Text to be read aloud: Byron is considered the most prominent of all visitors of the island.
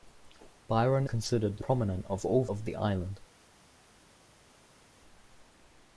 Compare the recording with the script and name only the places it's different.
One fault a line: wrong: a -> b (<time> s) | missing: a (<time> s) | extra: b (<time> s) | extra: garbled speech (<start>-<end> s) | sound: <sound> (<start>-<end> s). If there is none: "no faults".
missing: is (1.1 s)
missing: most (1.6 s)
missing: visitors (2.5 s)